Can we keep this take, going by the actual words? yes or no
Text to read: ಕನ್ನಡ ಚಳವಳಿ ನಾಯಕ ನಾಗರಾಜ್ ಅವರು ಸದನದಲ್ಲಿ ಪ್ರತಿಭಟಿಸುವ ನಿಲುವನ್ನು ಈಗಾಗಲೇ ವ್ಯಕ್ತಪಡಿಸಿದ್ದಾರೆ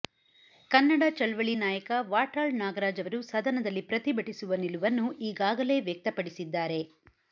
no